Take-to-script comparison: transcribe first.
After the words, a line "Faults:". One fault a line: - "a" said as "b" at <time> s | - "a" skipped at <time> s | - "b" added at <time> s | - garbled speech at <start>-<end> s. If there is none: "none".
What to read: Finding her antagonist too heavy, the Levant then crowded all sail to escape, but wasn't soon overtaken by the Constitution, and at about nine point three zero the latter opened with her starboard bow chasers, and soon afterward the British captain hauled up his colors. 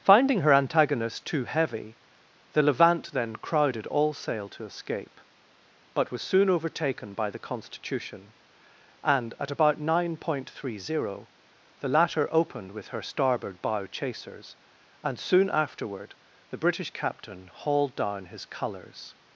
Finding her antagonist too heavy, the Levant then crowded all sail to escape, but was soon overtaken by the Constitution, and at about nine point three zero the latter opened with her starboard bow chasers, and soon afterward the British captain hauled down his colors.
Faults:
- "wasn't" said as "was" at 6.1 s
- "up" said as "down" at 17.9 s